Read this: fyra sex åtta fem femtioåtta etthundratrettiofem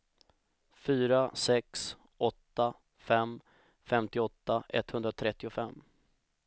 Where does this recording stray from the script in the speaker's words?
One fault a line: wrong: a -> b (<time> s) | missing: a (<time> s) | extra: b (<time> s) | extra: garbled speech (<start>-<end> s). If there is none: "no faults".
no faults